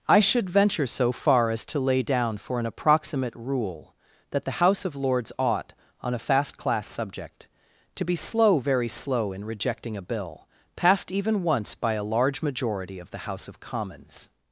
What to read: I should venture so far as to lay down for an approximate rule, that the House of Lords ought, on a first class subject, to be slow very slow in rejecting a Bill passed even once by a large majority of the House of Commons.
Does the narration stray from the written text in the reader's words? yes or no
yes